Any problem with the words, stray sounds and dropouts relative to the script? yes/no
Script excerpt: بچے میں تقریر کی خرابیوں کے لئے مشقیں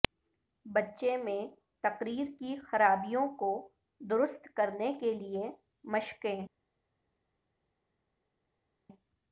yes